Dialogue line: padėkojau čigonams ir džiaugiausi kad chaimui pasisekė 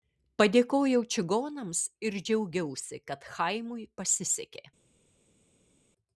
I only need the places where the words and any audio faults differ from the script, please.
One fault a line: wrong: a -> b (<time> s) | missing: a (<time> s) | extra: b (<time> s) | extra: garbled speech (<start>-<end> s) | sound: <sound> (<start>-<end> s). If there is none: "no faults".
no faults